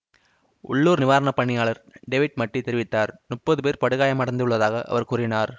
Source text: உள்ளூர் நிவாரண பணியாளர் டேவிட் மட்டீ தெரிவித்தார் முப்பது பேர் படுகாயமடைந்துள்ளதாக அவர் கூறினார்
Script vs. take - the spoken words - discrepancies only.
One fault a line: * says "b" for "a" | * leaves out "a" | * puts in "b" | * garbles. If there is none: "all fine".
all fine